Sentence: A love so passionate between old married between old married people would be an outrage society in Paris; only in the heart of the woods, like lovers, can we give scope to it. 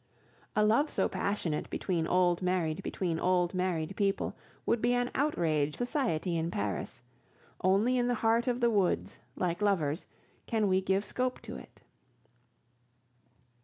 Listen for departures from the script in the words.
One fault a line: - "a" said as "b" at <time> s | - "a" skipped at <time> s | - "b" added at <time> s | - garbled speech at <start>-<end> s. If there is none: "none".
none